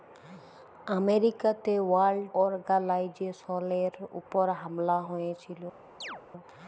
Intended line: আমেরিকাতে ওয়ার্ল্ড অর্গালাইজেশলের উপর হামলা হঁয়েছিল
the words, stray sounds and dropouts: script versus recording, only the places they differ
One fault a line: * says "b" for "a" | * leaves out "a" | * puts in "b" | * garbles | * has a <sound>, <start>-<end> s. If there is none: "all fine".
* has a chirp, 6.0-6.2 s